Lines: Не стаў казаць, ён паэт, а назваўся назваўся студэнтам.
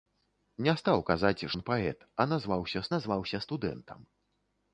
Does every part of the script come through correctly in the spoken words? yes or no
yes